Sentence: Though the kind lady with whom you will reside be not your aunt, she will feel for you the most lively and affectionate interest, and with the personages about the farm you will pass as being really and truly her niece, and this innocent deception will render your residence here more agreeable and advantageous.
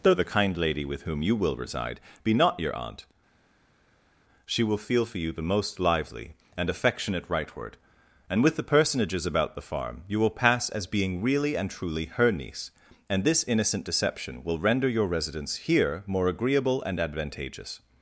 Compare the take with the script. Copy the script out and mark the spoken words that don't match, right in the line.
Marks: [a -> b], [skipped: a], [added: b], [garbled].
Though the kind lady with whom you will reside be not your aunt, she will feel for you the most lively and affectionate [interest, -> rightward] and with the personages about the farm you will pass as being really and truly her niece, and this innocent deception will render your residence here more agreeable and advantageous.